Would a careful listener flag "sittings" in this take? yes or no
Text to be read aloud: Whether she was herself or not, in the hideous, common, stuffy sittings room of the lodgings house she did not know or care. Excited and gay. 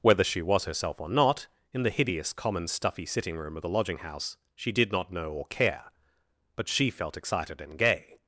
yes